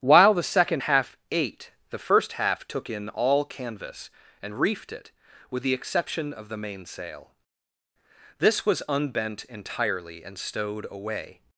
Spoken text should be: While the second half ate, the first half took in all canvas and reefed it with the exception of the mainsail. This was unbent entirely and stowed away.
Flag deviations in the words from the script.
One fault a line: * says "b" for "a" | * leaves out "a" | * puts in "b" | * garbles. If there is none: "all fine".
all fine